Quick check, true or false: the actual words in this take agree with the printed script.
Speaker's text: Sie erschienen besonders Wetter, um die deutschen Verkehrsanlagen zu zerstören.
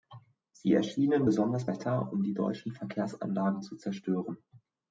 true